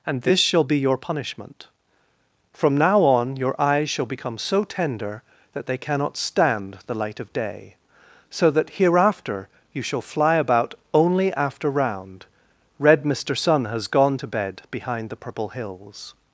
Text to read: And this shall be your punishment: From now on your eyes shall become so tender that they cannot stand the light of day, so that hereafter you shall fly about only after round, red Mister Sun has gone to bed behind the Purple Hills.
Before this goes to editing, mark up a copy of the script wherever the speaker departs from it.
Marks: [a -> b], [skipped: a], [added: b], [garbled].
And this shall be your punishment: From now on your eyes shall become so tender that they cannot stand the light of day, so that hereafter you shall fly about only after round, red Mister Sun has gone to bed behind the Purple Hills.